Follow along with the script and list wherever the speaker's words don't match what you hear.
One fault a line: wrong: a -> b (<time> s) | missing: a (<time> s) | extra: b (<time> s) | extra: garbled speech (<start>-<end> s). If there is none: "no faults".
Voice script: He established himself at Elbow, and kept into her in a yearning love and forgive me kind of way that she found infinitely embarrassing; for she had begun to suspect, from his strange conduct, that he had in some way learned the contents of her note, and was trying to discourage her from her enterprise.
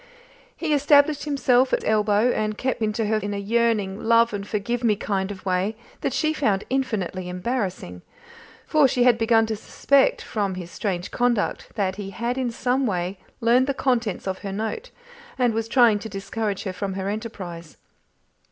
no faults